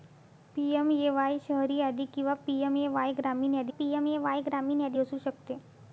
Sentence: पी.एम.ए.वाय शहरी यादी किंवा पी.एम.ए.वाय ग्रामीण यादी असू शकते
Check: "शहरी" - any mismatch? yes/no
no